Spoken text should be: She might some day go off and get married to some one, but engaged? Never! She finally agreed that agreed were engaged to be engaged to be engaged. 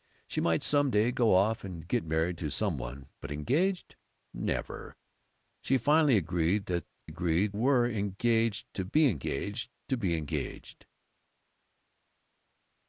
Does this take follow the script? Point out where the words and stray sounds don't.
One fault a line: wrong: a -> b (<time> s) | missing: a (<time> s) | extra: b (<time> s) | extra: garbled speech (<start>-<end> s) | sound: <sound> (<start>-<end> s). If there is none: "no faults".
no faults